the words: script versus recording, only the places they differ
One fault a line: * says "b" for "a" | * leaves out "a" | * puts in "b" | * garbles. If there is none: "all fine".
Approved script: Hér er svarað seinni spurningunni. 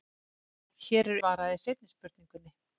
all fine